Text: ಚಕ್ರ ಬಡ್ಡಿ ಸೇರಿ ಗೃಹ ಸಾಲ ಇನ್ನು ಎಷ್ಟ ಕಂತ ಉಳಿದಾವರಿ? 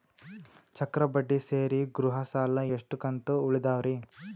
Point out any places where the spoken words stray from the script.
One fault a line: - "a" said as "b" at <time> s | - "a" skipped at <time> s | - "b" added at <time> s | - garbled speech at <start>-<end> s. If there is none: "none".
- "ಇನ್ನು" skipped at 2.6 s